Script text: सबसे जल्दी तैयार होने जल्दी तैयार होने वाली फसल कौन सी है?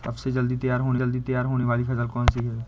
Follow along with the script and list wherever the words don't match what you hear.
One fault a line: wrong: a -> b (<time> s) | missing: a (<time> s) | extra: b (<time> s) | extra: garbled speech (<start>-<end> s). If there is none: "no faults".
no faults